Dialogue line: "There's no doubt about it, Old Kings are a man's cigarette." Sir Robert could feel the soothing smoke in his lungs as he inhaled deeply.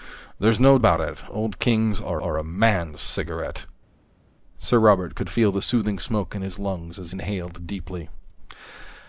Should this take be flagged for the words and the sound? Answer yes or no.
yes